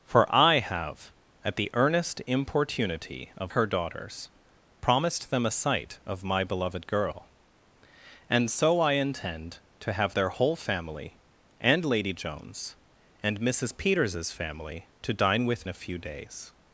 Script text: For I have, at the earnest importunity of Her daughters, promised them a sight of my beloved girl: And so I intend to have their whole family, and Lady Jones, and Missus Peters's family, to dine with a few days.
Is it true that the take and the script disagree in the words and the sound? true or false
false